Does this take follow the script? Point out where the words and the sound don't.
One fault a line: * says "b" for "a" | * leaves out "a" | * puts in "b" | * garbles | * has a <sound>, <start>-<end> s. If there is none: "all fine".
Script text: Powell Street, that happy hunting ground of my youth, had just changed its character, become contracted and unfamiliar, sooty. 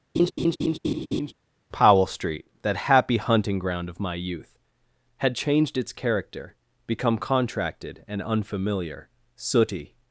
* has a laugh, 0.1-1.3 s
* leaves out "just"